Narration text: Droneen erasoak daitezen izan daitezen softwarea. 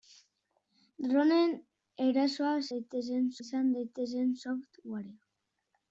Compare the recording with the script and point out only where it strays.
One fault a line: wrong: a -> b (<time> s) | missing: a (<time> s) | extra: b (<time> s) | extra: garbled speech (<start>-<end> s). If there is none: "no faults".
no faults